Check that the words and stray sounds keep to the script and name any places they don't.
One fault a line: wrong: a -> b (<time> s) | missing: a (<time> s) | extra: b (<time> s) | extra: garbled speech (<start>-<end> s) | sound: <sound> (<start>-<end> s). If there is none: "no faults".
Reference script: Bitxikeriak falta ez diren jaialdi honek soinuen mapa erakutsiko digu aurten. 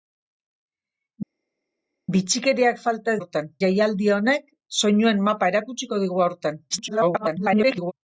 wrong: diren -> aurten (3.2 s)
extra: garbled speech (6.7-7.9 s)